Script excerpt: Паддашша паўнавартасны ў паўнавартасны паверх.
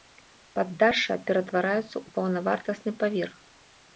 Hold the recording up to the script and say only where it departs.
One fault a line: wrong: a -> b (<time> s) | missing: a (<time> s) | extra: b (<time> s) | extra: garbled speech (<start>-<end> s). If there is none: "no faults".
wrong: паўнавартасны -> ператвараецца (1.3 s)